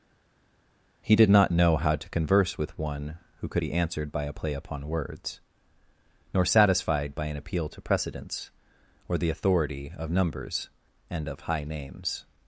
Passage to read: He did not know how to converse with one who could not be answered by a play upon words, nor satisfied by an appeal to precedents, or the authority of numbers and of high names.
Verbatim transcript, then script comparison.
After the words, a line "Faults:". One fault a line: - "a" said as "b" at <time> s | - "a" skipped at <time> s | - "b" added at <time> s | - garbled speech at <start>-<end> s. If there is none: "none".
He did not know how to converse with one who could be answered by a play upon words, nor satisfied by an appeal to precedents, or the authority of numbers and of high names.
Faults:
- "not" skipped at 3.6 s